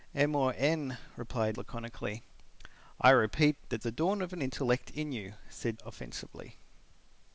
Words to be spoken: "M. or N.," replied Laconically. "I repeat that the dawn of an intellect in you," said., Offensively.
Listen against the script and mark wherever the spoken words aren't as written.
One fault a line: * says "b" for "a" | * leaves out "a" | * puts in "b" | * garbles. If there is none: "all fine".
all fine